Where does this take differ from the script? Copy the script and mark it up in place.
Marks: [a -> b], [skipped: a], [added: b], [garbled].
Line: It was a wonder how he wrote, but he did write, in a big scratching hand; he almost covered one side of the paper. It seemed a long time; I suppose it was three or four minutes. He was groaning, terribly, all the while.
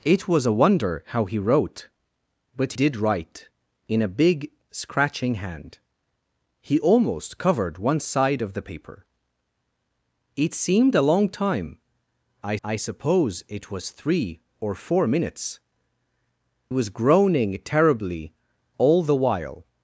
It was a wonder how he wrote, but [skipped: he] did write, in a big scratching hand; he almost covered one side of the paper. It seemed a long time; I [added: I] suppose it was three or four minutes. [skipped: He] was groaning, terribly, all the while.